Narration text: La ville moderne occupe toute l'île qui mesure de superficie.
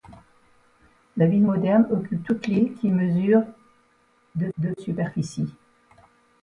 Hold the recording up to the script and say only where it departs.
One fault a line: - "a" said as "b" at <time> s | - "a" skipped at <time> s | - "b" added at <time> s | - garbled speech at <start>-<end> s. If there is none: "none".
- "de" added at 4.6 s